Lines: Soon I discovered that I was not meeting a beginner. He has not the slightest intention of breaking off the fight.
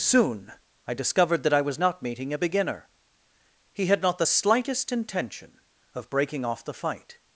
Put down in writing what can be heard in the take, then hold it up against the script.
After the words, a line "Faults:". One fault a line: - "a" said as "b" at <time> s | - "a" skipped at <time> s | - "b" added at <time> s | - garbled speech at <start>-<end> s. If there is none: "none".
Soon I discovered that I was not meeting a beginner. He had not the slightest intention of breaking off the fight.
Faults:
- "has" said as "had" at 3.9 s